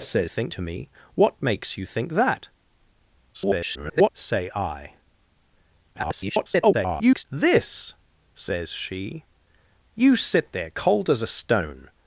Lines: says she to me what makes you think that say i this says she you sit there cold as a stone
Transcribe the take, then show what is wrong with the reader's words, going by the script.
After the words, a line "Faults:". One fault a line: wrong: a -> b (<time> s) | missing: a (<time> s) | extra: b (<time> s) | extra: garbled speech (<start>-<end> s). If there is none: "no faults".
says think to me what makes you think that [garbled] say i [garbled] this says she you sit there cold as a stone
Faults:
wrong: she -> think (0.3 s)
extra: garbled speech (3.3-4.1 s)
extra: garbled speech (5.9-7.2 s)